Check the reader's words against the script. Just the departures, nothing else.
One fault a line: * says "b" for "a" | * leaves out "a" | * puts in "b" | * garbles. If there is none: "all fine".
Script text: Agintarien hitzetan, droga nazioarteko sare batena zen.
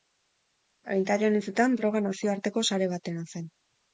all fine